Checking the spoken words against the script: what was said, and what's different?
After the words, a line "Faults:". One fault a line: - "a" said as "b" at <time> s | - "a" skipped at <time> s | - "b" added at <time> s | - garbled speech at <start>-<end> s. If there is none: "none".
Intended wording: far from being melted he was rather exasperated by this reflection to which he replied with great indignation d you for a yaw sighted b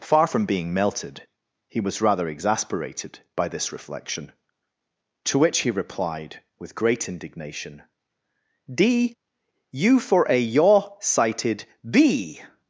far from being melted he was rather exasperated by this reflection to which he replied with great indignation d you for a yaw sighted b
Faults:
none